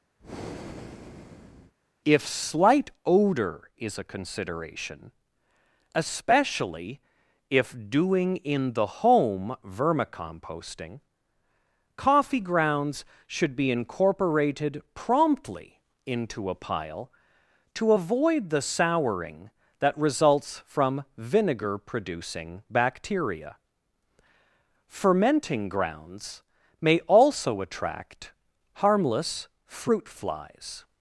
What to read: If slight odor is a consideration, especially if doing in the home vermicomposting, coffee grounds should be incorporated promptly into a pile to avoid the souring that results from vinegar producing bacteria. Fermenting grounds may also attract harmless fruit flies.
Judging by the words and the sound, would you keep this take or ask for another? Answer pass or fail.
fail